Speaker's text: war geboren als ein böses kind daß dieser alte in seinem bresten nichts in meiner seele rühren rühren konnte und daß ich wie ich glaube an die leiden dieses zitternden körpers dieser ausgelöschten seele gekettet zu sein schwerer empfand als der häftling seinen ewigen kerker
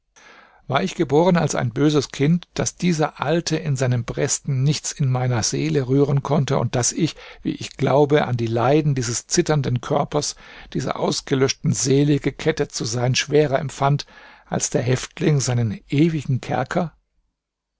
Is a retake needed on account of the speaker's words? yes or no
yes